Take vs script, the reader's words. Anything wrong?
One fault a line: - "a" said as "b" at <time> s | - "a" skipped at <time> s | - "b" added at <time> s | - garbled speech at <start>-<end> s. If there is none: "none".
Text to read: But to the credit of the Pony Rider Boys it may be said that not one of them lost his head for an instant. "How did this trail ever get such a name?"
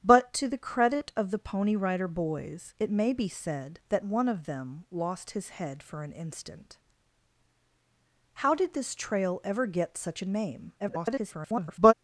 - "not" skipped at 4.0 s
- garbled speech at 10.8-11.9 s